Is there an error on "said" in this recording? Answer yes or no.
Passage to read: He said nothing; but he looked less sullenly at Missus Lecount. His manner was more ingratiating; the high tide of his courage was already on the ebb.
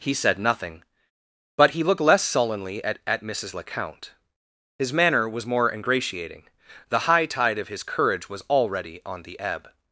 no